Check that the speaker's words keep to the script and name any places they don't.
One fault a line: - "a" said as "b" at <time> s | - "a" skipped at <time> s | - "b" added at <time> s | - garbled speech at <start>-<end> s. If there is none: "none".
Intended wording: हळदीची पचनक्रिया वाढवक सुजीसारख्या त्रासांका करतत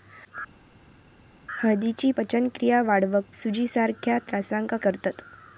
none